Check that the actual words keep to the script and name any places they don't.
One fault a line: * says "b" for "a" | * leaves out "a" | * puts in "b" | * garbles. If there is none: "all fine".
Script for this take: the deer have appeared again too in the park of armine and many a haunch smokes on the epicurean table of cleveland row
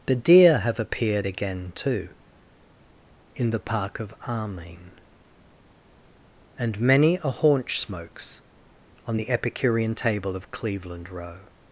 all fine